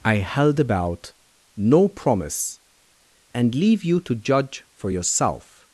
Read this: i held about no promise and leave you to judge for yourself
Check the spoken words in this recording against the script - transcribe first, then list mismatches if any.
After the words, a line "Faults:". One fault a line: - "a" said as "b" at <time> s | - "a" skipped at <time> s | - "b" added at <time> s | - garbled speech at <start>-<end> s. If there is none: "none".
i held about no promise and leave you to judge for yourself
Faults:
none